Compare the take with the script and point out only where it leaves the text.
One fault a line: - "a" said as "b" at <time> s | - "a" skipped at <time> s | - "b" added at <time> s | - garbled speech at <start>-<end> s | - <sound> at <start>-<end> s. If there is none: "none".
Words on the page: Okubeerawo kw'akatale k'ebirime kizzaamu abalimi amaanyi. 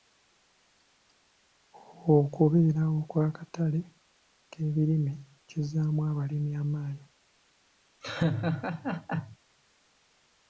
- laugh at 8.0-9.4 s